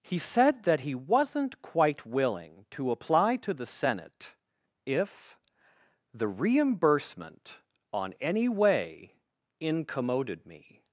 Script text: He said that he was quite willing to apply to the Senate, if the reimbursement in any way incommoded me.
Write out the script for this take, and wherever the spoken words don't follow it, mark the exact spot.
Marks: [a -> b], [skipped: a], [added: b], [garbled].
He said that he [was -> wasn't] quite willing to apply to the Senate, if the reimbursement [in -> on] any way incommoded me.